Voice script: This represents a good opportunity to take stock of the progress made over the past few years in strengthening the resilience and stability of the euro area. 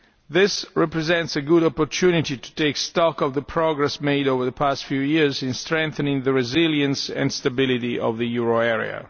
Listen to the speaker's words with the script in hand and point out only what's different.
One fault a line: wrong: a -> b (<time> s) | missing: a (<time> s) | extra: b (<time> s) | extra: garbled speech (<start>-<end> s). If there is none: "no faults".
no faults